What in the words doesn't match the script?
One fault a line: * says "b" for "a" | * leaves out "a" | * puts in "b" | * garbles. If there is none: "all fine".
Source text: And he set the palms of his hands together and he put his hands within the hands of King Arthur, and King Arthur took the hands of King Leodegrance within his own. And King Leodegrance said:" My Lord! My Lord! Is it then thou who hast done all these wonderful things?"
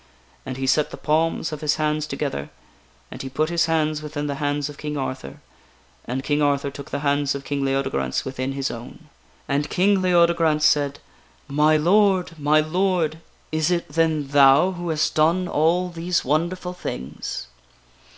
all fine